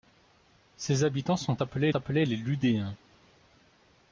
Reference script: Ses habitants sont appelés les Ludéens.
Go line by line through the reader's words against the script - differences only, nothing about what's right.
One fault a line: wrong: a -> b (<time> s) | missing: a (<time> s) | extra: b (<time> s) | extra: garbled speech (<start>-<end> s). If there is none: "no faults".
extra: appelés (1.9 s)